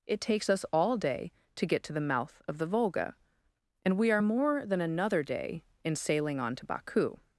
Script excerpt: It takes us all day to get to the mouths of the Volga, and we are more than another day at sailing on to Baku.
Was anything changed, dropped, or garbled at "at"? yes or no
yes